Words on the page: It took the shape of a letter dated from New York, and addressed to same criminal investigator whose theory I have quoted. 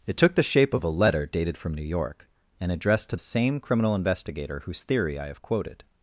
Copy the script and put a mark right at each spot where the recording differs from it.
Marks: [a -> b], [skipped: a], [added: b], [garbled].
It took the shape of a letter dated from New York, and addressed to same criminal investigator whose theory I have quoted.